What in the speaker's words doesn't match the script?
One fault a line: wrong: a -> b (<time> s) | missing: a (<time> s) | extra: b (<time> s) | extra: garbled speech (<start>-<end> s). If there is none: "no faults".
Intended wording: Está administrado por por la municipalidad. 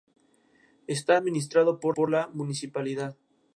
no faults